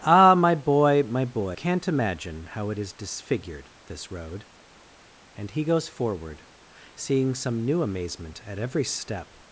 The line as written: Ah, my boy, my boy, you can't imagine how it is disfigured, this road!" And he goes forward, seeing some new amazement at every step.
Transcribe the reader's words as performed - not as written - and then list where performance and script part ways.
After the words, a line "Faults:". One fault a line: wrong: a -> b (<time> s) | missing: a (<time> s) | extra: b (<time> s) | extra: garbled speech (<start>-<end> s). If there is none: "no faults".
Ah, my boy, my boy, can't imagine how it is disfigured, this road!" And he goes forward, seeing some new amazement at every step.
Faults:
missing: you (1.6 s)